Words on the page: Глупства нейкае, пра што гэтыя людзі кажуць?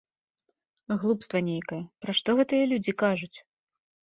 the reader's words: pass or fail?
pass